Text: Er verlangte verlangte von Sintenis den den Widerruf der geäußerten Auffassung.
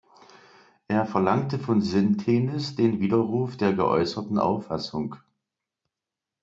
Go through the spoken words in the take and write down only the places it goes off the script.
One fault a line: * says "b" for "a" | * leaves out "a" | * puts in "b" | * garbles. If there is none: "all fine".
* leaves out "verlangte"
* leaves out "den"